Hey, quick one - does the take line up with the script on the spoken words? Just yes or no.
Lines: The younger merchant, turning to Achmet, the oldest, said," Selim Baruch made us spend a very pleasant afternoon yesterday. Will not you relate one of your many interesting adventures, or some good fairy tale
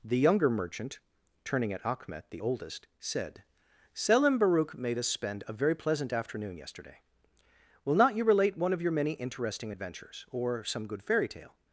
no